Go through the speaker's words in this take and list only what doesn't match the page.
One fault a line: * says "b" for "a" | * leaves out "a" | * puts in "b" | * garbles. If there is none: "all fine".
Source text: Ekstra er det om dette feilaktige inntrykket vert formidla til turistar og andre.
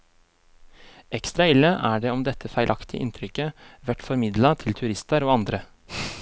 * puts in "ille"